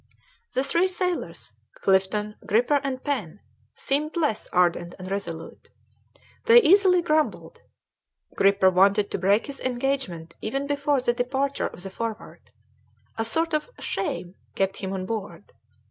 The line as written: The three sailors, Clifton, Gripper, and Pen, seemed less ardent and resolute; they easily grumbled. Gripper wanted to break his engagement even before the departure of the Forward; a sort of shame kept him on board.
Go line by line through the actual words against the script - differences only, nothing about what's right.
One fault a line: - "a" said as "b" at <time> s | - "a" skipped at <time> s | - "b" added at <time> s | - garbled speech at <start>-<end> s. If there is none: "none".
none